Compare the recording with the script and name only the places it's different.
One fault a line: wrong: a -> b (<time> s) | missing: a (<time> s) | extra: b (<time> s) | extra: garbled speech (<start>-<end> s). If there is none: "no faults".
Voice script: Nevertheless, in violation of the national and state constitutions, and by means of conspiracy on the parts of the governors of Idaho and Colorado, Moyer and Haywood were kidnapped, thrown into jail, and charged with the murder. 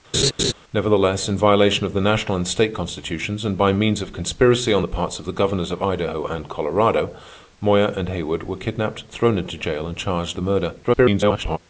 missing: with (10.4 s)
extra: garbled speech (10.8-11.6 s)